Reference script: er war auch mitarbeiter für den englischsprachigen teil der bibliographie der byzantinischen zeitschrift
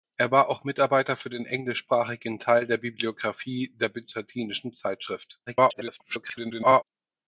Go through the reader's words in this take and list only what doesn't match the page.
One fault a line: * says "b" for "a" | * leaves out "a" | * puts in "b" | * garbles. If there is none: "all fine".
* garbles